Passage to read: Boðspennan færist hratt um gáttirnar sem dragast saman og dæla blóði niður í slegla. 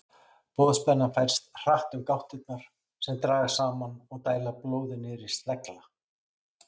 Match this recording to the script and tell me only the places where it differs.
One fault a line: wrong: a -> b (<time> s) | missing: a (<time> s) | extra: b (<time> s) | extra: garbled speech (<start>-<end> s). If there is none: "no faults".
no faults